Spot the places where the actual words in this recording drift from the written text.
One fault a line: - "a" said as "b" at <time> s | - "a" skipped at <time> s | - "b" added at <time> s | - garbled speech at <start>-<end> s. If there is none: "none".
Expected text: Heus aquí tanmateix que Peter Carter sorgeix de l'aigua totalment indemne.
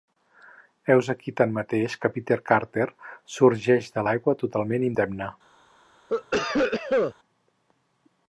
none